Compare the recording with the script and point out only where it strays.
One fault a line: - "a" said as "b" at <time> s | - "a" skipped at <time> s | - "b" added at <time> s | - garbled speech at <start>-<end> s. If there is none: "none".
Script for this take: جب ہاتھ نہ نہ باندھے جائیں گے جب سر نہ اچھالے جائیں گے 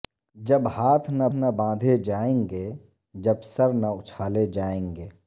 none